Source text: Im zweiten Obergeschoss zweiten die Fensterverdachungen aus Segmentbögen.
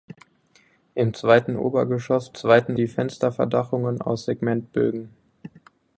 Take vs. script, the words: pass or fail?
pass